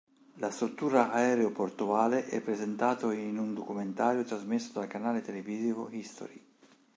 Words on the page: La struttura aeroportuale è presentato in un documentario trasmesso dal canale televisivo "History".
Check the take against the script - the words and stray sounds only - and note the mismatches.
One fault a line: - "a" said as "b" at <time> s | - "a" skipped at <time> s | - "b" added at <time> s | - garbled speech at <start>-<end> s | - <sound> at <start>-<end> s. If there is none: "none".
none